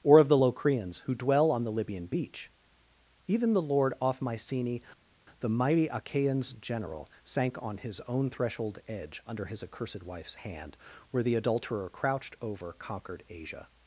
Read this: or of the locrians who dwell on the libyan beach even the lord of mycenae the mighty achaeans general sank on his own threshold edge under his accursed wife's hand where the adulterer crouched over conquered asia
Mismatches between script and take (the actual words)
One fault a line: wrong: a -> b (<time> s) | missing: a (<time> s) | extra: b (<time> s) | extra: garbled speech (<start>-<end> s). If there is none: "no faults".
wrong: of -> off (4.0 s)